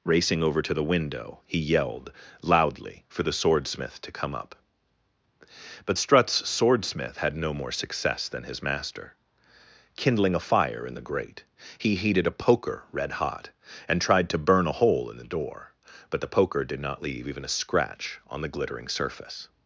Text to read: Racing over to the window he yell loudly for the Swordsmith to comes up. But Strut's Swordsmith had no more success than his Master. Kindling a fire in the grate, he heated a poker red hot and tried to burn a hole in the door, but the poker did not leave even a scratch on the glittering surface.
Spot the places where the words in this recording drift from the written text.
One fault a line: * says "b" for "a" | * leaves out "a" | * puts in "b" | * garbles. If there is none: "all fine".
* says "yelled" for "yell"
* says "come" for "comes"